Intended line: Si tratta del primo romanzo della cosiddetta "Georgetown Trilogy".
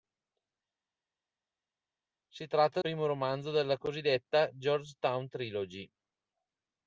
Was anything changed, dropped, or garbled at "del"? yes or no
yes